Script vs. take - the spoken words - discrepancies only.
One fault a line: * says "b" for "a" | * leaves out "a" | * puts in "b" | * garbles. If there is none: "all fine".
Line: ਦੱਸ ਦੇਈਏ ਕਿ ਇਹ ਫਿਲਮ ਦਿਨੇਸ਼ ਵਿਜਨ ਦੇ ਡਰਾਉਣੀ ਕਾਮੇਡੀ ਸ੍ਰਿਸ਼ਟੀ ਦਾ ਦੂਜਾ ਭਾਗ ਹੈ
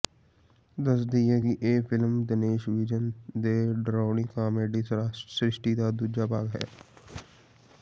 all fine